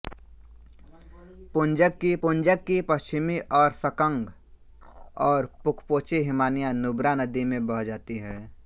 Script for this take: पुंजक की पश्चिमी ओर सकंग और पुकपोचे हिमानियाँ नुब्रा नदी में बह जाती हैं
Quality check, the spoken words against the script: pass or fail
fail